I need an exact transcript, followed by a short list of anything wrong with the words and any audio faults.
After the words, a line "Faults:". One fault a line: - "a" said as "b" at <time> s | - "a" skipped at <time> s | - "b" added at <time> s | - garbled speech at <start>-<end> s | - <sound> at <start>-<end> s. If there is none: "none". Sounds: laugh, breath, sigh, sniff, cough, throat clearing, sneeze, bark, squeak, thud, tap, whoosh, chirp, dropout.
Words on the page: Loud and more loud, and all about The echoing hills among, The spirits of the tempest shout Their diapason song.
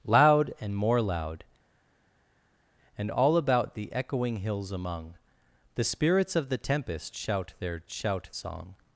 Loud and more loud, and all about The echoing hills among, The spirits of the tempest shout Their shout song.
Faults:
- "diapason" said as "shout" at 7.9 s